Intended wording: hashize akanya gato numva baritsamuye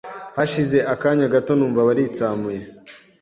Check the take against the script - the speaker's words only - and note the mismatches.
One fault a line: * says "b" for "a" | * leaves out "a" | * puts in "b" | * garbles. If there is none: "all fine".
all fine